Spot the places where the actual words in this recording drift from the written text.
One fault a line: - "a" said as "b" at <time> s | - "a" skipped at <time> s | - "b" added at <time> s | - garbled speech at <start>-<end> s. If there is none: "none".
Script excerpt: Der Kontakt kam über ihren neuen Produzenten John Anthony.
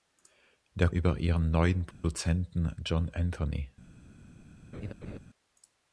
- "Kontakt kam" skipped at 0.9 s